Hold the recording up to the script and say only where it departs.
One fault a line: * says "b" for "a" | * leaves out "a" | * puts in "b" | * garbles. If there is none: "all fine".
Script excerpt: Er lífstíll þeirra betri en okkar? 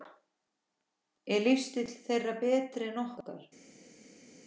all fine